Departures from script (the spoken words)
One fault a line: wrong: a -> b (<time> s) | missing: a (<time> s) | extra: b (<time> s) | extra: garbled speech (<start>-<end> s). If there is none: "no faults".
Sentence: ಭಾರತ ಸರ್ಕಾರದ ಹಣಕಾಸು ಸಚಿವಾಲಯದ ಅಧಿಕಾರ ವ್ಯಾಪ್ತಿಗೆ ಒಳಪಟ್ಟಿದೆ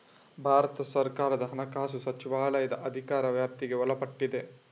no faults